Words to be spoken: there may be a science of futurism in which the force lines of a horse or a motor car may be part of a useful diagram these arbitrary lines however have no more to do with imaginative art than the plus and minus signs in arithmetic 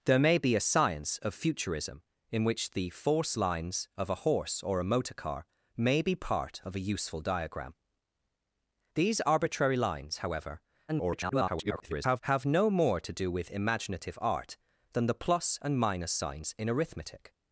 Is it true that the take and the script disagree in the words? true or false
true